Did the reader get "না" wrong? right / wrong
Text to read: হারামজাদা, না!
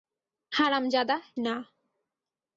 right